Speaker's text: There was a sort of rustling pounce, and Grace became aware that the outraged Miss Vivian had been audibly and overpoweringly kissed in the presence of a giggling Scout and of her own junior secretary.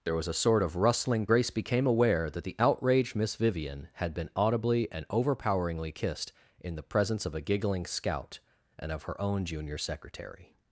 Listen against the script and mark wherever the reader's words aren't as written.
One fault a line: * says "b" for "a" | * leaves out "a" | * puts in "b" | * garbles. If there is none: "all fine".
* leaves out "pounce and"